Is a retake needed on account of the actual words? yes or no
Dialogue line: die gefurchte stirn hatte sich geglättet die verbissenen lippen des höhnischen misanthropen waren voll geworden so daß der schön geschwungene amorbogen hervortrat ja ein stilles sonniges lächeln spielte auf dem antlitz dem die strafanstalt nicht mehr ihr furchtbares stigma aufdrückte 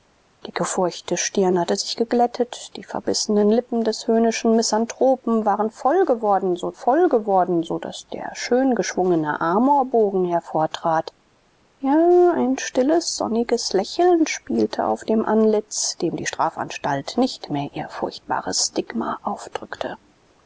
yes